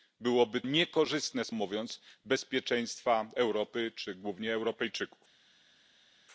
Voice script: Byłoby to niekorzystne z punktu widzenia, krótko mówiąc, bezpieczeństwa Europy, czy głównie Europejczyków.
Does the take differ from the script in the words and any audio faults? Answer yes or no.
yes